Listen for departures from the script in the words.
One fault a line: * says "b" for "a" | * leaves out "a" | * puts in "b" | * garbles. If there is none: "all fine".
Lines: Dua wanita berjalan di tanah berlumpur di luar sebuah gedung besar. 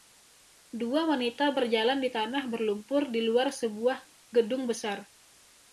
all fine